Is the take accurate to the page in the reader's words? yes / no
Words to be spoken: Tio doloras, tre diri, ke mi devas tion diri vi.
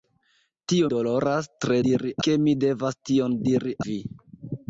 yes